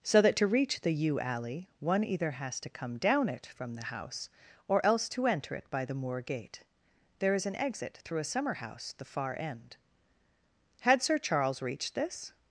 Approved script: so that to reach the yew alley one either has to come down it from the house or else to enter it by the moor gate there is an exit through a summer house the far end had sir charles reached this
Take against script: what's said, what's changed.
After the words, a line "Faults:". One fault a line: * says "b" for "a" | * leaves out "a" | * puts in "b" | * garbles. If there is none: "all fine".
so that to reach the yew alley one either has to come down it from the house or else to enter it by the moor gate there is an exit through a summer house the far end had sir charles reached this
Faults:
all fine